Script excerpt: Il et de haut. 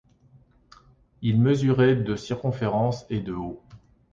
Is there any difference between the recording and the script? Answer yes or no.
yes